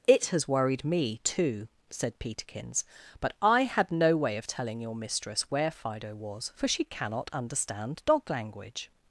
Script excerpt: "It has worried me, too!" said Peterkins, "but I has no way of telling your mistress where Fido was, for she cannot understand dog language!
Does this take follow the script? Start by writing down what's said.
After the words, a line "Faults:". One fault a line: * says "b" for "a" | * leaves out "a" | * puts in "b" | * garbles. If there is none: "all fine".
"It has worried me, too!" said Peterkins, "but I had no way of telling your mistress where Fido was, for she cannot understand dog language!
Faults:
* says "had" for "has"